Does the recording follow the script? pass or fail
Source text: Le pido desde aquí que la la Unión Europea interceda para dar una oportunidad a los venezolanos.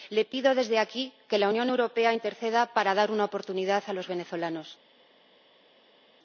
fail